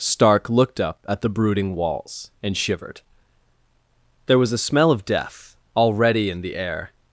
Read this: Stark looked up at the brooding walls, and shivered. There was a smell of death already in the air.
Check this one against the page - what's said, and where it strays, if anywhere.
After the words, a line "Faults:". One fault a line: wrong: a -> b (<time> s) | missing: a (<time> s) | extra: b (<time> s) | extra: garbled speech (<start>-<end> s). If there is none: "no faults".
Stark looked up at the brooding walls, and shivered. There was a smell of death already in the air.
Faults:
no faults